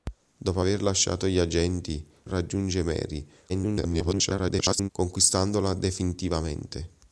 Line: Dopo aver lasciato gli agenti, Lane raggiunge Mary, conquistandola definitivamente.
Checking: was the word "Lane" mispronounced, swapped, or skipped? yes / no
yes